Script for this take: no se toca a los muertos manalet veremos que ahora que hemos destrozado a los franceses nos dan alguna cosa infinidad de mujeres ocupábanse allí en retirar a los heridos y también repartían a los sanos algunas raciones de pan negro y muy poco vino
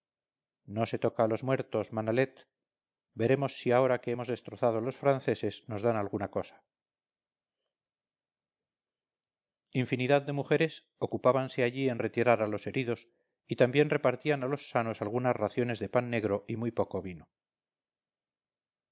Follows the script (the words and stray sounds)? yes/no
no